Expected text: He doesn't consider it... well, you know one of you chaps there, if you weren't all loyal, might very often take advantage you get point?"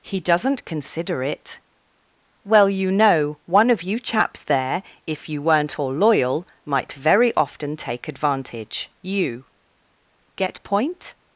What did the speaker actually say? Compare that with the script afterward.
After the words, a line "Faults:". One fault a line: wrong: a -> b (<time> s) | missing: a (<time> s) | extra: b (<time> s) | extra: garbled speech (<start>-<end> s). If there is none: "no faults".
He doesn't consider it... well, you know one of you chaps there, if you weren't all loyal, might very often take advantage you get point?"
Faults:
no faults